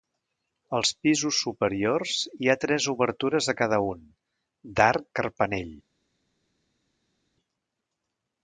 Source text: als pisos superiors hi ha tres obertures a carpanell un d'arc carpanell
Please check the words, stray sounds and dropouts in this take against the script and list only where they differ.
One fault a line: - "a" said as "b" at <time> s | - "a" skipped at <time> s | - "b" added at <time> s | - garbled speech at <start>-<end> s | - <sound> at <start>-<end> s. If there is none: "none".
- "carpanell" said as "cada" at 3.6 s